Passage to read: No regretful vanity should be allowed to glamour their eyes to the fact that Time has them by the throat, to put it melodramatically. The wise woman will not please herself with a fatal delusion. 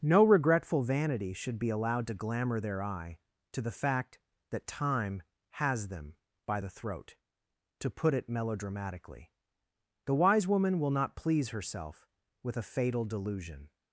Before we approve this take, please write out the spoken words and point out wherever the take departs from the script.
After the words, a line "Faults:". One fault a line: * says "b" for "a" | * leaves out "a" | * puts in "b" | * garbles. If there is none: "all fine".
No regretful vanity should be allowed to glamour their eye to the fact that Time has them by the throat, to put it melodramatically. The wise woman will not please herself with a fatal delusion.
Faults:
* says "eye" for "eyes"